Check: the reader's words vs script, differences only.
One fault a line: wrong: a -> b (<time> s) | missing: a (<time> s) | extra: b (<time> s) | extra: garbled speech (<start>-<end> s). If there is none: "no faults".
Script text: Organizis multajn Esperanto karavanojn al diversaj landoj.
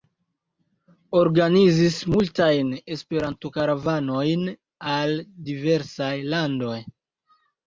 no faults